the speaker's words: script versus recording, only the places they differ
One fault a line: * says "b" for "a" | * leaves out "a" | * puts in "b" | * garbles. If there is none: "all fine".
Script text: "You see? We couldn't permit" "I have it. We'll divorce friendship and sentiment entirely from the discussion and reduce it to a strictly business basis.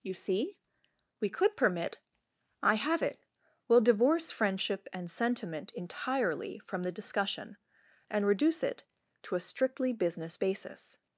* says "could" for "couldn't"